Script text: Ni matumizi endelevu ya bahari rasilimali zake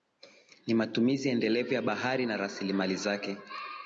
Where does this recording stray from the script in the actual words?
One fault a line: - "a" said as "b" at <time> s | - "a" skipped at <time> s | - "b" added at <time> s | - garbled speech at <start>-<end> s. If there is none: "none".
- "na" added at 2.2 s